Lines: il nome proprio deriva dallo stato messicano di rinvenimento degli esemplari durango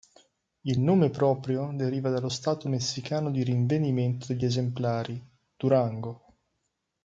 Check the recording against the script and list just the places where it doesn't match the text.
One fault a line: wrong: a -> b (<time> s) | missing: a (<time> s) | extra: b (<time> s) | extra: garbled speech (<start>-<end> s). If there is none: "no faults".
no faults